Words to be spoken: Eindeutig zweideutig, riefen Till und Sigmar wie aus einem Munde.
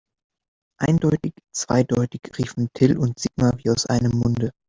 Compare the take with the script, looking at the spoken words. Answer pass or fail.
pass